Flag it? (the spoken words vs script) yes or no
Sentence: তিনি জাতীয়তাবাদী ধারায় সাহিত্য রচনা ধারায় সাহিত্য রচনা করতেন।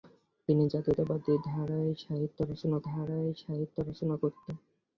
no